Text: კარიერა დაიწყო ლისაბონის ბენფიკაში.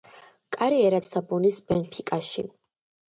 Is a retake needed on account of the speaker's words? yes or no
yes